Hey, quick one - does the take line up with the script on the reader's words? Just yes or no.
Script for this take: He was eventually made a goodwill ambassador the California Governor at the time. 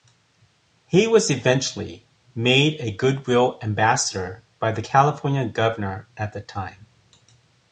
no